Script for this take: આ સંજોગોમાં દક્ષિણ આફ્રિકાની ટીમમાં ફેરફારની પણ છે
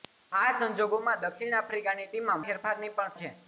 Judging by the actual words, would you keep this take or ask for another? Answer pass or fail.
pass